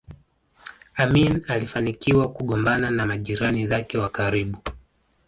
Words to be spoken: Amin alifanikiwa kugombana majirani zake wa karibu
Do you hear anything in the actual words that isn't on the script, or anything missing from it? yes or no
yes